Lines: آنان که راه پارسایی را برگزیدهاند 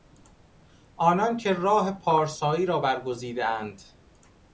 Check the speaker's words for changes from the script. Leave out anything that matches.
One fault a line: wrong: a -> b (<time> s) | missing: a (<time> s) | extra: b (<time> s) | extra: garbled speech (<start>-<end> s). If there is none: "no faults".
no faults